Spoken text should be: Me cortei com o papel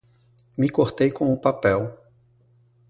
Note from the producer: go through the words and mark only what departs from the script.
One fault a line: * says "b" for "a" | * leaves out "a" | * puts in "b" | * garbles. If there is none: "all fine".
all fine